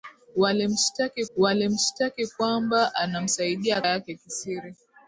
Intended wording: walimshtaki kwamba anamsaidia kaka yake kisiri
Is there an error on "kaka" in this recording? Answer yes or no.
yes